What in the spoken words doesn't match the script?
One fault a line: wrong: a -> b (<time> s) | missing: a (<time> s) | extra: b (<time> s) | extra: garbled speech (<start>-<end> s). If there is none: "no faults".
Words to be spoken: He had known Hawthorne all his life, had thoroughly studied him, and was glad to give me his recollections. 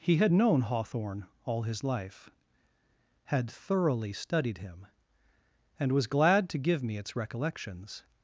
wrong: his -> its (7.0 s)